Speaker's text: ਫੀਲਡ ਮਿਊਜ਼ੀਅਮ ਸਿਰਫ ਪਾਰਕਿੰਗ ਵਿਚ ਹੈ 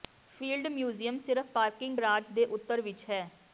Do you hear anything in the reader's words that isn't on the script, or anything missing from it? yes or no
yes